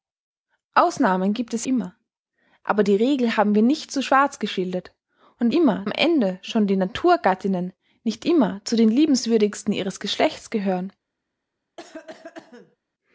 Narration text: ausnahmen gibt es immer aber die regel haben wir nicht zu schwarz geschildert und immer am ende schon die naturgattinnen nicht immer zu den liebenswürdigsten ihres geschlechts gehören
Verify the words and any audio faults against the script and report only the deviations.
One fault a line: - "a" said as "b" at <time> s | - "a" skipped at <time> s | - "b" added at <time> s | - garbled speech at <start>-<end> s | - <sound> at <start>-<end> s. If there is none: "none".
- cough at 11.8-12.8 s